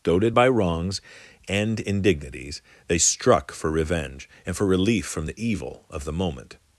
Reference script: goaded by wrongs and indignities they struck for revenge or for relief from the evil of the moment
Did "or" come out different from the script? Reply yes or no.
yes